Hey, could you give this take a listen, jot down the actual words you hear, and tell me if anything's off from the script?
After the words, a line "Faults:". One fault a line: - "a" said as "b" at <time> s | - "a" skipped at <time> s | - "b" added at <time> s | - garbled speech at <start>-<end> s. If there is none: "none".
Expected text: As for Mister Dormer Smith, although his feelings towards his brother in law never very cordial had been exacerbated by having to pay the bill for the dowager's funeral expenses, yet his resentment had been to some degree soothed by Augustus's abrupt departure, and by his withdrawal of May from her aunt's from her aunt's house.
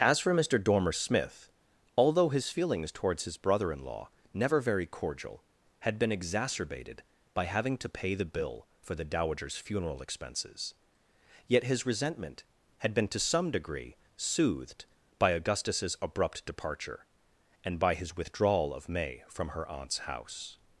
As for Mister Dormer Smith, although his feelings towards his brother in law never very cordial had been exacerbated by having to pay the bill for the dowager's funeral expenses, yet his resentment had been to some degree soothed by Augustus's abrupt departure, and by his withdrawal of May from her aunt's house.
Faults:
- "from her aunt's" skipped at 20.0 s